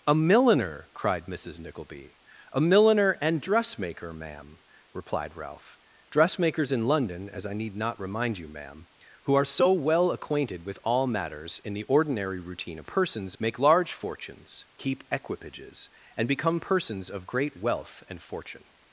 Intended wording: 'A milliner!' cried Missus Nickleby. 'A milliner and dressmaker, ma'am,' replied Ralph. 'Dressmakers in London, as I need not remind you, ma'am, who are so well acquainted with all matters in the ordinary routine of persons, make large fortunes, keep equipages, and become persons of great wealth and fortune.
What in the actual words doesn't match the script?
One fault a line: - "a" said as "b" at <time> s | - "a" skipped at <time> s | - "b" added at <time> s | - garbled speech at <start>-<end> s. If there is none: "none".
none